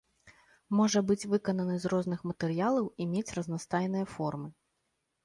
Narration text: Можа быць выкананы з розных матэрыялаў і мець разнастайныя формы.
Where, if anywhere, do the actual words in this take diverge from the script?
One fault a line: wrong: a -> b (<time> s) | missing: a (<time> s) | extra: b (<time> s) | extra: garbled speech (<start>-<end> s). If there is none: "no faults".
no faults